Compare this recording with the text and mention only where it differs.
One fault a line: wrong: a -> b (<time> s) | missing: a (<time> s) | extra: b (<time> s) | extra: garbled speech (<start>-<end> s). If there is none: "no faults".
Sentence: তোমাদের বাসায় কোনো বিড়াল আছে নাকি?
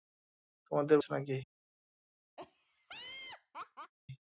missing: বাসায় কোনো বিড়াল (1.0 s)